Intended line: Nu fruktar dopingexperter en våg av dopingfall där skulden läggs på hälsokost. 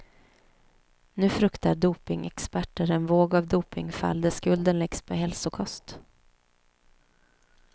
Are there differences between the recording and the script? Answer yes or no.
no